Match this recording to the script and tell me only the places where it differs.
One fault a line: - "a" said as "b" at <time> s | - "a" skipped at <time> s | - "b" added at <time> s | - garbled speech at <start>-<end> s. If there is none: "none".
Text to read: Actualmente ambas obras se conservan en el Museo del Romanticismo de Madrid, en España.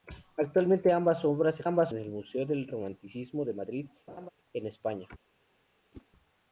- "conservan" said as "ambas" at 1.6 s